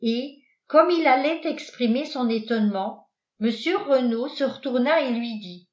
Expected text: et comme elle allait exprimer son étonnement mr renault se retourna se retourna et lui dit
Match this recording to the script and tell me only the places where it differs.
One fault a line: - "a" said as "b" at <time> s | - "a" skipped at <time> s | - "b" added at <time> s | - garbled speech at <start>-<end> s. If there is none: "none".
- "elle" said as "il" at 0.9 s
- "se retourna" skipped at 5.0 s